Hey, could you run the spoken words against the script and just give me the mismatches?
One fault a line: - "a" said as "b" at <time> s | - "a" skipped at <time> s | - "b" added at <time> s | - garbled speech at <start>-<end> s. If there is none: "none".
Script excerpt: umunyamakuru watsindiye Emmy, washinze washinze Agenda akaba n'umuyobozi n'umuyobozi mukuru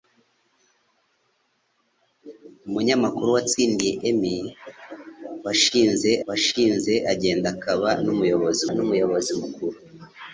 none